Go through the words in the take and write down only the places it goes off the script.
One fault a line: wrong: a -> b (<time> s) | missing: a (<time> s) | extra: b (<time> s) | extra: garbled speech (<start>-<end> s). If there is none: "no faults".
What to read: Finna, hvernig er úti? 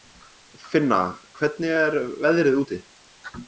extra: veðrið (2.3 s)